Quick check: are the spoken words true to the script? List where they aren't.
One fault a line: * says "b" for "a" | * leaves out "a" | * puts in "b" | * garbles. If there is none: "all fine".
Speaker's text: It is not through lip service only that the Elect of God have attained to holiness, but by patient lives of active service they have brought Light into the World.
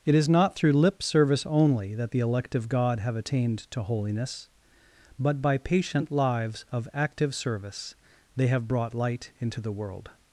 all fine